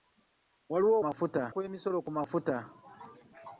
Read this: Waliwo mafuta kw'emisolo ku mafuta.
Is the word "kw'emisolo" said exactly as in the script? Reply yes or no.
yes